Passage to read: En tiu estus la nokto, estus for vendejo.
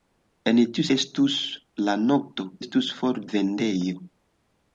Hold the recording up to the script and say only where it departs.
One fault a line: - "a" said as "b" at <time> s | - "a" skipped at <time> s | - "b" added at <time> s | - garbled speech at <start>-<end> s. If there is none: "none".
none